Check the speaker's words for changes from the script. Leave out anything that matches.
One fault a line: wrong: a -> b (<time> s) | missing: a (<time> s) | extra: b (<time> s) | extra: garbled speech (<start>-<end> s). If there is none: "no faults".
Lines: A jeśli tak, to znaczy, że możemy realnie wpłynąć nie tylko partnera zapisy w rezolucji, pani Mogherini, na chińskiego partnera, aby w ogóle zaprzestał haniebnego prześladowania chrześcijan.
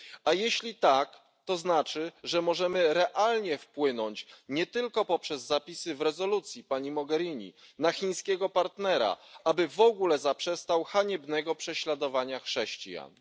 wrong: partnera -> poprzez (5.0 s)